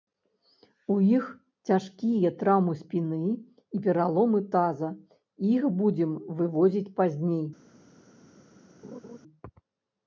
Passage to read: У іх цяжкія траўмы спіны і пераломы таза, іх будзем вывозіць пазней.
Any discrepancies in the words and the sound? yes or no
yes